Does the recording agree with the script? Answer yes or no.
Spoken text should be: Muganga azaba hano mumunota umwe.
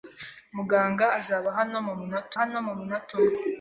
no